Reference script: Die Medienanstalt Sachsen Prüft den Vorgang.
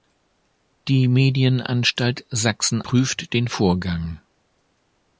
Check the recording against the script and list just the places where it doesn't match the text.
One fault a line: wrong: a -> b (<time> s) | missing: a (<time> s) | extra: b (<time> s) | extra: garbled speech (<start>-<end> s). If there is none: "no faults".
no faults